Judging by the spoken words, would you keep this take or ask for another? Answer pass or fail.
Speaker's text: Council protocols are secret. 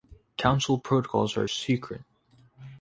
pass